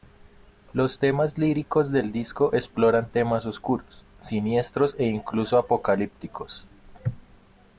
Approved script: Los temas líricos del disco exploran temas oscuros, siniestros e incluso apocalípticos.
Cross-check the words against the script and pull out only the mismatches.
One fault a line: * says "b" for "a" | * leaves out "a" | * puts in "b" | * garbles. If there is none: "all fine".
all fine